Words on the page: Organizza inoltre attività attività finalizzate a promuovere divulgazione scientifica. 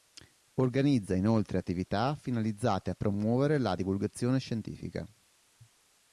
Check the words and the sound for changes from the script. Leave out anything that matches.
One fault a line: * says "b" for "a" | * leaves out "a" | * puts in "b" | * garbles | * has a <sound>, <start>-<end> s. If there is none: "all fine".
* leaves out "attività"
* puts in "la"